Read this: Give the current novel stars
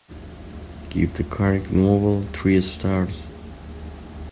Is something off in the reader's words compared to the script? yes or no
yes